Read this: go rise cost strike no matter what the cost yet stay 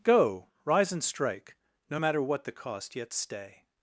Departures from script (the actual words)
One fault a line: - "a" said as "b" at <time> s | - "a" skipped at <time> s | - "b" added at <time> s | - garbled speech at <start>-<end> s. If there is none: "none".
- "cost" said as "and" at 0.9 s